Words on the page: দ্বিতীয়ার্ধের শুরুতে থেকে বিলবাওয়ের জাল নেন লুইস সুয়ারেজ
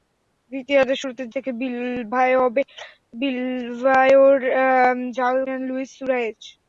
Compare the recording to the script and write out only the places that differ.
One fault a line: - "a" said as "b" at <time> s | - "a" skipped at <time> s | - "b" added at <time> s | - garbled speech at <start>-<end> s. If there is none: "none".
none